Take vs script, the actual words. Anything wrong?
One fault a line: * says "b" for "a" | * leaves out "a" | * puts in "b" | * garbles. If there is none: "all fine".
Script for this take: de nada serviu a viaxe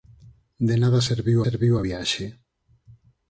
* puts in "serviu"